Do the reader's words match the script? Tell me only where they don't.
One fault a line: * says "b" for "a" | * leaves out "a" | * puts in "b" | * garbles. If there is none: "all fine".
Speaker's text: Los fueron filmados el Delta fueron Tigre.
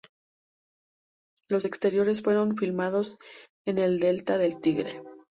* puts in "exteriores"
* puts in "en"
* says "del" for "fueron"